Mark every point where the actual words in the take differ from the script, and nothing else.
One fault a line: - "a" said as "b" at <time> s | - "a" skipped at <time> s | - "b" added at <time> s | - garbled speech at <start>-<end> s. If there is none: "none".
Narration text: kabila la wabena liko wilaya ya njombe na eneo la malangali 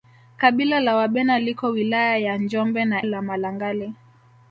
- "eneo" skipped at 3.0 s